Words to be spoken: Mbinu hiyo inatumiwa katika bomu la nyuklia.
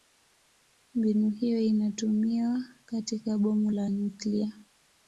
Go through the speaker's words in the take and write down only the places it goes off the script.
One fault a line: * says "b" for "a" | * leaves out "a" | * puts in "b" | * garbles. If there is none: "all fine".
all fine